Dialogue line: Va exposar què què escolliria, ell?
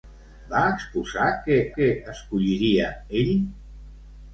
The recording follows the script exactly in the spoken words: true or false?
true